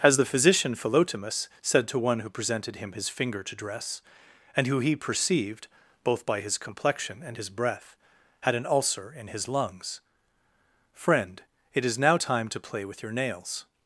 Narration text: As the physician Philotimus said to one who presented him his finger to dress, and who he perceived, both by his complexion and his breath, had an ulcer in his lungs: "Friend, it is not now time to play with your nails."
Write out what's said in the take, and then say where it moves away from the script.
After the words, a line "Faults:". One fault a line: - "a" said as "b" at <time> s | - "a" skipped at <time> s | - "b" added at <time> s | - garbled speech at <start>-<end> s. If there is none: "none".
As the physician Philotimus said to one who presented him his finger to dress, and who he perceived, both by his complexion and his breath, had an ulcer in his lungs: "Friend, it is now time to play with your nails."
Faults:
- "not" skipped at 12.0 s